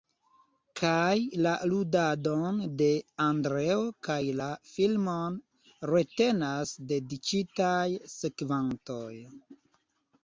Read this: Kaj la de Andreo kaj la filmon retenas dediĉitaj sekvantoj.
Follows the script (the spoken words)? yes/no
no